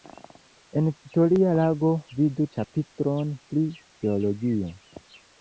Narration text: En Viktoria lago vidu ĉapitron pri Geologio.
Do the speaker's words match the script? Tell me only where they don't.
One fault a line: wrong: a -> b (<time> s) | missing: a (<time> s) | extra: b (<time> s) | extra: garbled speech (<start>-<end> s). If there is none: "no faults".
no faults